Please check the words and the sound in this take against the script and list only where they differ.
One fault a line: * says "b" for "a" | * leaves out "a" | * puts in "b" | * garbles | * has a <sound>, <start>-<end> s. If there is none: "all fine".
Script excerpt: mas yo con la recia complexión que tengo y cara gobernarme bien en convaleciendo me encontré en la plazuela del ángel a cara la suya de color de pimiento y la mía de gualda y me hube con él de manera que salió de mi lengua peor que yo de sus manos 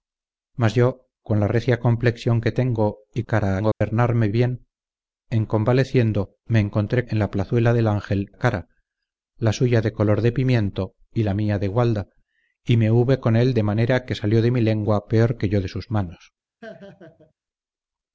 * has a dropout, 3.7-3.8 s
* has a laugh, 16.6-17.3 s